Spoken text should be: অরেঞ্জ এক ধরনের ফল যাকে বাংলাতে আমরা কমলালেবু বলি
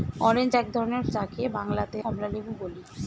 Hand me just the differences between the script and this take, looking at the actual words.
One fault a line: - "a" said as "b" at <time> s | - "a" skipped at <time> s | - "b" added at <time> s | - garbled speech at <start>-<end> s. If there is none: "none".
- "ফল" skipped at 1.0 s
- "আমরা" skipped at 2.0 s